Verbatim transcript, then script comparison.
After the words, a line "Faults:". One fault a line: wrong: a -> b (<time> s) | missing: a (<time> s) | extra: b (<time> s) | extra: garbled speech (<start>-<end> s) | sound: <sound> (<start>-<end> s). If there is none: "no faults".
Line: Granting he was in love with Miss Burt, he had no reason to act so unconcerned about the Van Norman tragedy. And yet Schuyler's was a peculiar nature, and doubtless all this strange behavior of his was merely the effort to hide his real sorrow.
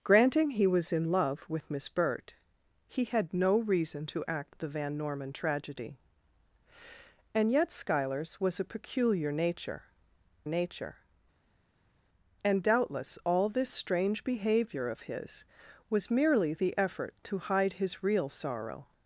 Granting he was in love with Miss Burt, he had no reason to act the Van Norman tragedy. And yet Schuyler's was a peculiar nature nature, and doubtless all this strange behavior of his was merely the effort to hide his real sorrow.
Faults:
missing: so unconcerned about (4.5 s)
extra: nature (10.5 s)